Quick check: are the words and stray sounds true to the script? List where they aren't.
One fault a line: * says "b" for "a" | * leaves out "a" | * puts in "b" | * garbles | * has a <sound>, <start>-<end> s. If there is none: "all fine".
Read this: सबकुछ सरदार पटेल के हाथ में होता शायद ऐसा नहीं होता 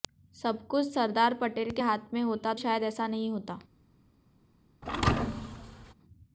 * has a thud, 4.8-5.9 s